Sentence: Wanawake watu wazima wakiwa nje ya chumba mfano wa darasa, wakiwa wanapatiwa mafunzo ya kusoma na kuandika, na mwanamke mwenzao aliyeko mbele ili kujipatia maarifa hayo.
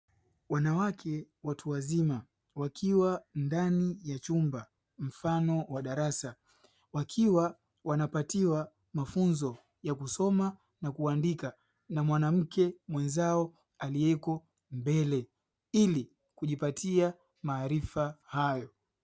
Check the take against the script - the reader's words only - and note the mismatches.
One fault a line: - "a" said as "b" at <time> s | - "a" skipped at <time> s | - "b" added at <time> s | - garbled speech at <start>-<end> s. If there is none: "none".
- "nje" said as "ndani" at 3.4 s